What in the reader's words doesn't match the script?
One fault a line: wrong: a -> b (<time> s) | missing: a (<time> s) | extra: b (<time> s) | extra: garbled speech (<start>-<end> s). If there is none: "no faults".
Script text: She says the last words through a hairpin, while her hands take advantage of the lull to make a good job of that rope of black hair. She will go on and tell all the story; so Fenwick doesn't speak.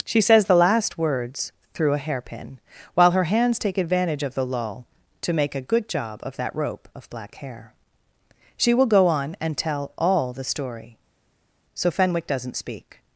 no faults